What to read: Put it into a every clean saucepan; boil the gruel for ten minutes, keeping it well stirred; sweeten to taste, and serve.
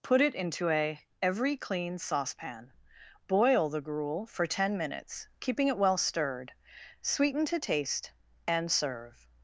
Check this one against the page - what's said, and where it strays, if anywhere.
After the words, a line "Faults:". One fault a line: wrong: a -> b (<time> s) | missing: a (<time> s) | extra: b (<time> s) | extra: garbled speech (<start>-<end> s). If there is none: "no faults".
Put it into a every clean saucepan; boil the gruel for ten minutes, keeping it well stirred; sweeten to taste, and serve.
Faults:
no faults